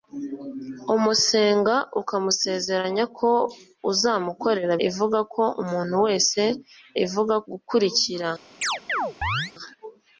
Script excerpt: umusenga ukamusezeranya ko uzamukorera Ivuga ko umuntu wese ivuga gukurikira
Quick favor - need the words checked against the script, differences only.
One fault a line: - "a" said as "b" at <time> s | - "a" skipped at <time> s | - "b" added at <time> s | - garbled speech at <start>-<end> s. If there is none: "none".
none